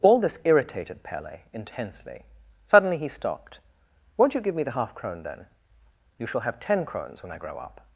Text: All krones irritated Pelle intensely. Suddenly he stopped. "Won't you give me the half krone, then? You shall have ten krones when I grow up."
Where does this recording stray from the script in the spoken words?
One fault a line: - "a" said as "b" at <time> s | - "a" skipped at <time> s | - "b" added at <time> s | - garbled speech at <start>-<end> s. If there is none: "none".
- "krones" said as "this" at 0.2 s